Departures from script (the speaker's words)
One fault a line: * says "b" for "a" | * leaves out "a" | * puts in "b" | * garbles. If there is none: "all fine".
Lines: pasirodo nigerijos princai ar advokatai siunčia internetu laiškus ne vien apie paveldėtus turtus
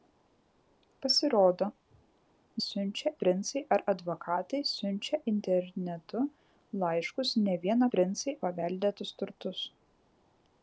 * says "siunčia" for "nigerijos"
* says "princai" for "apie"